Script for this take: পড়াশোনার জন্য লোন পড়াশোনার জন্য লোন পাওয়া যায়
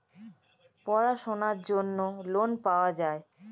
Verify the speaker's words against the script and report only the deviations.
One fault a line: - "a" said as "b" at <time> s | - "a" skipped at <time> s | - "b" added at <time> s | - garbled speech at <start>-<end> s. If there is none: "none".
- "পড়াশোনার জন্য লোন" skipped at 2.5 s